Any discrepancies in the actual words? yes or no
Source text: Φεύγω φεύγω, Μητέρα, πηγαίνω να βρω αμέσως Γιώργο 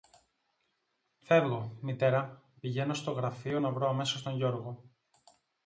yes